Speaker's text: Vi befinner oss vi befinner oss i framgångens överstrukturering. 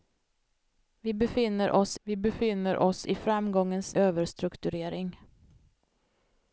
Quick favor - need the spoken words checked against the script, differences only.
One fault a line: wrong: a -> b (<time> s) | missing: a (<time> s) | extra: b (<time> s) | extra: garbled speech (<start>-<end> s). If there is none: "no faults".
no faults